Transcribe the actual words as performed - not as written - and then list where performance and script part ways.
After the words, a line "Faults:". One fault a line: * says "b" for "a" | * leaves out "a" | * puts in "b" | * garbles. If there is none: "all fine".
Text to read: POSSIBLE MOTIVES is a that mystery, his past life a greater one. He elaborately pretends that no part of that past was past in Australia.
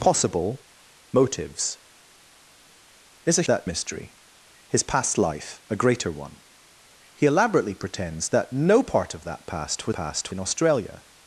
POSSIBLE MOTIVES is a that mystery, his past life a greater one. He elaborately pretends that no part of that past was past in Australia.
Faults:
all fine